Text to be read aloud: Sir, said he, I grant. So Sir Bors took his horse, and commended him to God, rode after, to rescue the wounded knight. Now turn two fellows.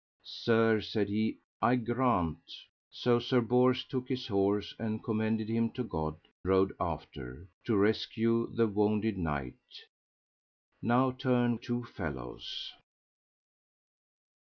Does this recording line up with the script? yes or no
yes